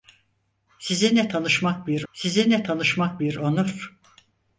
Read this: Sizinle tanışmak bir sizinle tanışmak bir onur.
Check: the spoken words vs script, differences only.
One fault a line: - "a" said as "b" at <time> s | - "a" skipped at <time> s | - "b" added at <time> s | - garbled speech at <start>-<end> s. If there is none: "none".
none